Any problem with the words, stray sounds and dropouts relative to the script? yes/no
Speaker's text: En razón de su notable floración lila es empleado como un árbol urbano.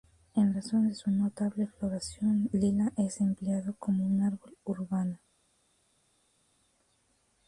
no